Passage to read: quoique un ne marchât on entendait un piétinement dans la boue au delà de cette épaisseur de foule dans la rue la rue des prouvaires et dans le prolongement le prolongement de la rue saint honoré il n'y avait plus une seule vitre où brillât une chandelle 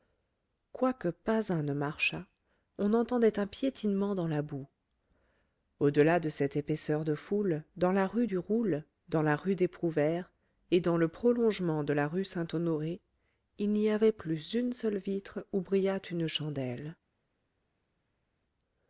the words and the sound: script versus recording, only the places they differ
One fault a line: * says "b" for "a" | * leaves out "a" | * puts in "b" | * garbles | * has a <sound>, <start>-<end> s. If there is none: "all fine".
* puts in "pas"
* puts in "du roule dans"
* leaves out "le prolongement"